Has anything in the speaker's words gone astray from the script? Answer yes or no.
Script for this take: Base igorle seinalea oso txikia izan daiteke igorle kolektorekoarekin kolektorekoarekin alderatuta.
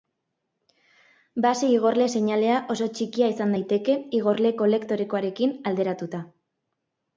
yes